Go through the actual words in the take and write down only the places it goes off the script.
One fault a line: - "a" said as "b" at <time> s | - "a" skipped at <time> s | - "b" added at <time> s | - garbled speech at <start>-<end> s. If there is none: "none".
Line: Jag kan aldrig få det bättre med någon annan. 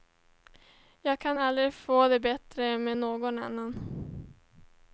none